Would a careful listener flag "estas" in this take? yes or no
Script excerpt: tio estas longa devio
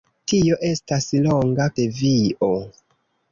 no